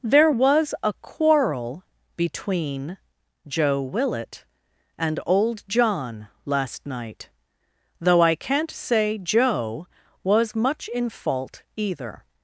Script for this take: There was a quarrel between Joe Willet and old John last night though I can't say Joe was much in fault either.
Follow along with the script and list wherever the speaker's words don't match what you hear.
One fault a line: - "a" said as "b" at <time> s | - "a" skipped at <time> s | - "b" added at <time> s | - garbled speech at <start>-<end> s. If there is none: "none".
none